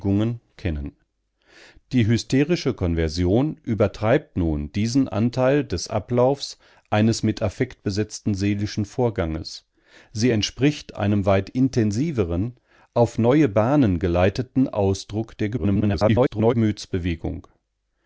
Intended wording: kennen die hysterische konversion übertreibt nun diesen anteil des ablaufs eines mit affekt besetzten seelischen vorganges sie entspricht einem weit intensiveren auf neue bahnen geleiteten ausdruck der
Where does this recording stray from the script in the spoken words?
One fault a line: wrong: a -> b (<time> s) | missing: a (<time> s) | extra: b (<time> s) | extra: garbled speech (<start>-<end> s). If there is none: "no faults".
extra: garbled speech (15.6-16.5 s)